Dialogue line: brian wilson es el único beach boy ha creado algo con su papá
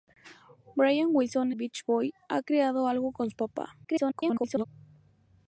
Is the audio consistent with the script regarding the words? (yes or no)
no